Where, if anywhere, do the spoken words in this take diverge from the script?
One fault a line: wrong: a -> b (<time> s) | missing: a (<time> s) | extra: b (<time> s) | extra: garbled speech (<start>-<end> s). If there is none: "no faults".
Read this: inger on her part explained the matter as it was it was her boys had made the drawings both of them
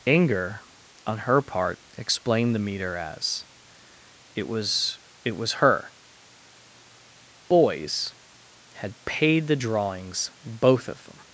wrong: matter -> meter (2.6 s)
wrong: made -> paid (9.0 s)